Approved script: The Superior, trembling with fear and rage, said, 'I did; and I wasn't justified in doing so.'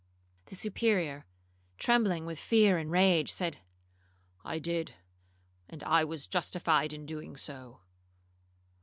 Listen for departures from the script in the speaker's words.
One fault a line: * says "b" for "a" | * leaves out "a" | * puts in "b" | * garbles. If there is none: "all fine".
* says "was" for "wasn't"